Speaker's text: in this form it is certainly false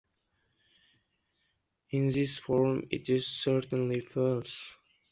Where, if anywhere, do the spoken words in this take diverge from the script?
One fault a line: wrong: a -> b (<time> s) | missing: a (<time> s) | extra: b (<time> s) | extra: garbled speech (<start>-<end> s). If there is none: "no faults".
no faults